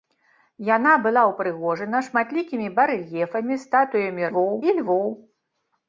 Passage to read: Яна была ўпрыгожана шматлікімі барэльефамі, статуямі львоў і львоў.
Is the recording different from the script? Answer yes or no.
no